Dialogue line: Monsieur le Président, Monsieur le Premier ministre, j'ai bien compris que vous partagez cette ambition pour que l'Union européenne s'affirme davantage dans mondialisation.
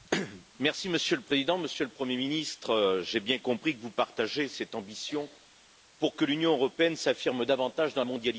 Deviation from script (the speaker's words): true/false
false